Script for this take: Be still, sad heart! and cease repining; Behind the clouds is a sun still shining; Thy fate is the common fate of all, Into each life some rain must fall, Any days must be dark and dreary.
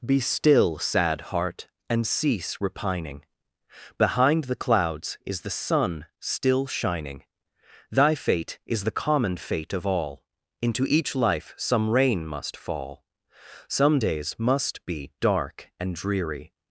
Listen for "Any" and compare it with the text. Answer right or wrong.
wrong